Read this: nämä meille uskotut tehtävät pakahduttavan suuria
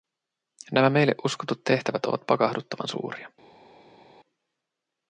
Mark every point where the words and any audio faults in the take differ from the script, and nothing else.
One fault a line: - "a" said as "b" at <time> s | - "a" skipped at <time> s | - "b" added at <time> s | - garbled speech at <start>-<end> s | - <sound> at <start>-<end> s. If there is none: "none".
- "ovat" added at 2.0 s